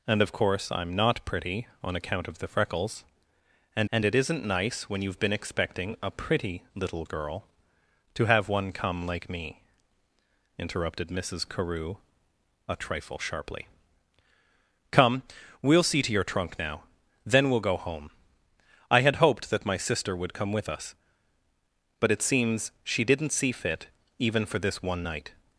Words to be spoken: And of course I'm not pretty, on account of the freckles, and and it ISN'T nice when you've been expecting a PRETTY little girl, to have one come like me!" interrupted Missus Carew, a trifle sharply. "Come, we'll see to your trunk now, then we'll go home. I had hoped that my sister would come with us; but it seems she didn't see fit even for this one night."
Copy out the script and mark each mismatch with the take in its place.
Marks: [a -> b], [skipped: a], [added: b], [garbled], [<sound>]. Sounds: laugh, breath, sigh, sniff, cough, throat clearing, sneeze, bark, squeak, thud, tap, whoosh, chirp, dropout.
And of course I'm not pretty, on account of the freckles, and and it ISN'T nice when you've been expecting a PRETTY little girl, to have one come like me!" interrupted Missus Carew, a trifle sharply. "Come, we'll see to your trunk now, then we'll go home. I had hoped that my sister would come with us; but it seems she didn't see fit even for this one night."